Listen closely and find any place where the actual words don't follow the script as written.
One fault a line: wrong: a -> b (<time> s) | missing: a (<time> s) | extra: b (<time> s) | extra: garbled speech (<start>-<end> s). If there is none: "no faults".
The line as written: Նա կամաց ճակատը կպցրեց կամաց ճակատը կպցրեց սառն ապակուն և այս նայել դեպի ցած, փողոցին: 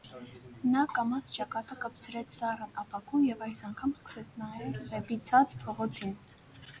missing: կամաց ճակատը կպցրեց (2.3 s)
extra: անգամ սկսեց (3.7 s)